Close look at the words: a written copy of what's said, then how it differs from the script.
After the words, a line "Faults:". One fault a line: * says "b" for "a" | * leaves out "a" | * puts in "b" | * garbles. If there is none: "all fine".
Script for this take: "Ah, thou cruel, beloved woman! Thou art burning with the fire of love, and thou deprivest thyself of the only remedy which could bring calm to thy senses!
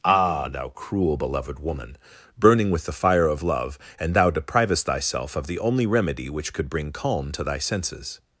"Ah, thou cruel, beloved woman! burning with the fire of love, and thou deprivest thyself of the only remedy which could bring calm to thy senses!
Faults:
* leaves out "Thou art"